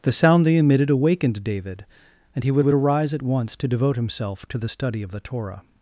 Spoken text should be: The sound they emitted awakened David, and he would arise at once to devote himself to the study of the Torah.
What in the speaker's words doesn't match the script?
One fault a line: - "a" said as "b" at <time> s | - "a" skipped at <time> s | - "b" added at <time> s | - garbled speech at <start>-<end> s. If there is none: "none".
- "would" added at 2.6 s